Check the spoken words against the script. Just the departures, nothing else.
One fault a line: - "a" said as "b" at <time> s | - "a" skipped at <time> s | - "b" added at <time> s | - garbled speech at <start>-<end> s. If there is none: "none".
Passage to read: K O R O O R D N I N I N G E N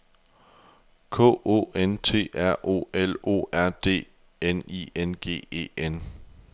- "N T" added at 1.8 s
- "L" added at 2.9 s
- "I N" skipped at 5.2 s